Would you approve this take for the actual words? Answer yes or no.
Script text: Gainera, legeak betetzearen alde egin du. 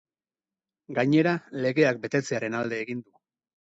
yes